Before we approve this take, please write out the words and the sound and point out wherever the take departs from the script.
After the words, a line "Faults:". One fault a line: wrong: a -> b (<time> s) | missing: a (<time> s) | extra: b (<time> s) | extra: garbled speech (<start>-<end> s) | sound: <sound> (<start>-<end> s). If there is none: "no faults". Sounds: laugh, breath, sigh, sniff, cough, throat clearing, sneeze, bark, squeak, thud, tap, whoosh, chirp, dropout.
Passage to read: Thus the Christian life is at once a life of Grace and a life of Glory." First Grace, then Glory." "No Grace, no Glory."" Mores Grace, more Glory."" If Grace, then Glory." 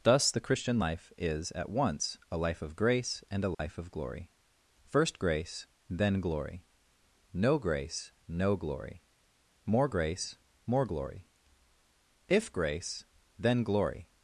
Thus the Christian life is at once a life of Grace and a life of Glory." First Grace, then Glory." "No Grace, no Glory."" More Grace, more Glory."" If Grace, then Glory."
Faults:
sound: dropout (3.5-3.6 s)
wrong: Mores -> More (9.7 s)